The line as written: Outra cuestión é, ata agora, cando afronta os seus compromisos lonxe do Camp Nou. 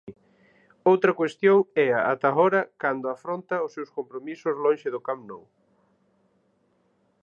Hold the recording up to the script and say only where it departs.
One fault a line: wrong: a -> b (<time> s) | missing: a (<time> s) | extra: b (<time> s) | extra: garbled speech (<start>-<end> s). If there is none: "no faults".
no faults